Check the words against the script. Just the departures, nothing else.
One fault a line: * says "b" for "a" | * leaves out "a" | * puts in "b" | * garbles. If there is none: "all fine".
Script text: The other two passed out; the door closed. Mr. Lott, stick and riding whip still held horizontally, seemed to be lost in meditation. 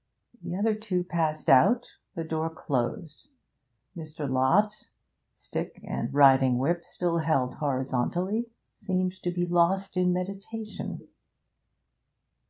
all fine